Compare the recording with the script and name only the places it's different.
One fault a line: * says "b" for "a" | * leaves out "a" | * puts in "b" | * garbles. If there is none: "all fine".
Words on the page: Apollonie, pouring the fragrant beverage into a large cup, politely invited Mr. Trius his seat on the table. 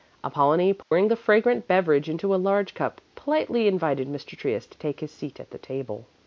* puts in "to take"
* says "at" for "on"